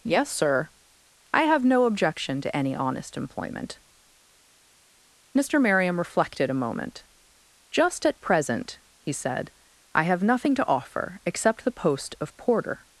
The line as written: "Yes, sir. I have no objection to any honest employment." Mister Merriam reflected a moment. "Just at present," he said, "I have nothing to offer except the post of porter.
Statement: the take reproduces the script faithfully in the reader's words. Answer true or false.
true